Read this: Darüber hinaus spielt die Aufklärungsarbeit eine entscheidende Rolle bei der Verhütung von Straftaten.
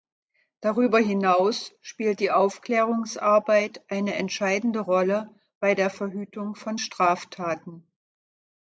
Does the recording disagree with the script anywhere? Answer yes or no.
no